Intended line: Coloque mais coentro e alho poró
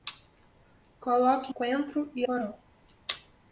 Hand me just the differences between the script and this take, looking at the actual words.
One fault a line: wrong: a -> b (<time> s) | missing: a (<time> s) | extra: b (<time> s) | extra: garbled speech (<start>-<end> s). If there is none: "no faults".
missing: mais (1.5 s)
missing: alho (2.3 s)